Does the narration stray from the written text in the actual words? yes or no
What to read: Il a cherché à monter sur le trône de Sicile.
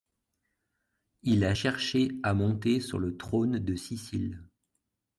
no